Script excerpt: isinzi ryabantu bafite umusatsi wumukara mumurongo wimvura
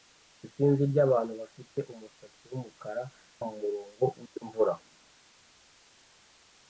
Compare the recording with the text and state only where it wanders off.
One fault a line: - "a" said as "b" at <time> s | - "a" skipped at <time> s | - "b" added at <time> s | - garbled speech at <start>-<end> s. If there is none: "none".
none